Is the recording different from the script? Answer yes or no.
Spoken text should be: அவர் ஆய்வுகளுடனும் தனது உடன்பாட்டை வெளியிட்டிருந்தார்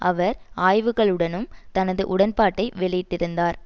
no